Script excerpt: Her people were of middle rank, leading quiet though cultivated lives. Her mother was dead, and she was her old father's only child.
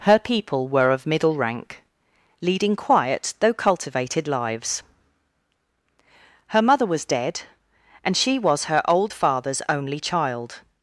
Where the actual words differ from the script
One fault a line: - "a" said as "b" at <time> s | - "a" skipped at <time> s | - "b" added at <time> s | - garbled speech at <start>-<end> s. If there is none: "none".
none